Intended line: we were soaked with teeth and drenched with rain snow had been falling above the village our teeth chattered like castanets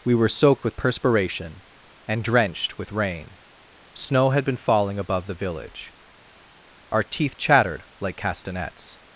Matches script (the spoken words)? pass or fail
fail